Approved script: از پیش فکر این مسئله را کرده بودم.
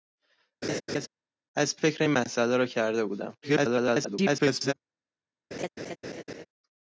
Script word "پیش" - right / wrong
wrong